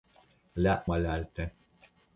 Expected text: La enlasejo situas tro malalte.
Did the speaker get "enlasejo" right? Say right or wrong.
wrong